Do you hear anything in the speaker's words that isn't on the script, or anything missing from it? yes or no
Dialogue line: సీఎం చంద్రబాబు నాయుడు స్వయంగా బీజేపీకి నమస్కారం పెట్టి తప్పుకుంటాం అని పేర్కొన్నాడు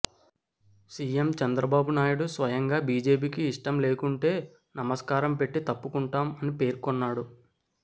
yes